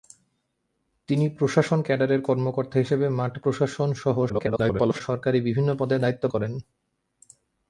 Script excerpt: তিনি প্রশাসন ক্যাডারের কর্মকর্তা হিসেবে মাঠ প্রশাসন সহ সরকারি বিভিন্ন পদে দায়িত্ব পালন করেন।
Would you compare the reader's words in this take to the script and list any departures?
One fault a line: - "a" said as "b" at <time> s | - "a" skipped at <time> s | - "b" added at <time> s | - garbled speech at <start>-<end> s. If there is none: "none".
- garbled speech at 4.3-5.0 s
- "পালন" skipped at 6.2 s